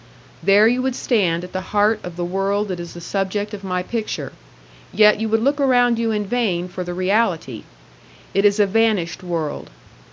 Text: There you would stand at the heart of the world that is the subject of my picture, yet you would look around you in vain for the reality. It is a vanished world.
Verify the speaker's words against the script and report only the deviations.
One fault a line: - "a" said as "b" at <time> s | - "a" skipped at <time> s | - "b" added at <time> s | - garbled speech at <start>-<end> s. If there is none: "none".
none